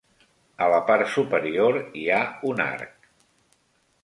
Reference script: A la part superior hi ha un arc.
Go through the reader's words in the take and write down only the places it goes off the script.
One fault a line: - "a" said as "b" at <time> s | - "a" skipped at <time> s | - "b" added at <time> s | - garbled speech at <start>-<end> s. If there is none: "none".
none